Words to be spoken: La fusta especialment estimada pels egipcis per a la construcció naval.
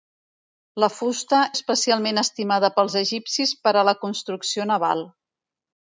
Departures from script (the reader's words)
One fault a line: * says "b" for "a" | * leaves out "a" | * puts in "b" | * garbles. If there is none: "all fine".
all fine